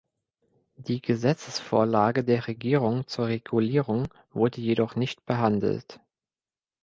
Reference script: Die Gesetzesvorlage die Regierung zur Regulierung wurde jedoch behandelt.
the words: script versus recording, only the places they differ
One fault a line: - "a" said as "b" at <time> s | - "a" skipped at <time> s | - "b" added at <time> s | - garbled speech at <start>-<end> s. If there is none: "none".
- "die" said as "der" at 2.2 s
- "nicht" added at 5.0 s